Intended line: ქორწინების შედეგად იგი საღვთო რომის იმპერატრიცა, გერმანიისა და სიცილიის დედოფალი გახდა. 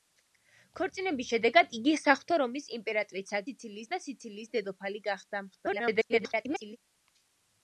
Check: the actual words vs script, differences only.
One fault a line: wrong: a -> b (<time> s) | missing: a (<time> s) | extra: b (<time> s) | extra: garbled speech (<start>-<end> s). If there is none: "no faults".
wrong: გერმანიისა -> სიცილიის (3.5 s)
extra: garbled speech (5.5-6.8 s)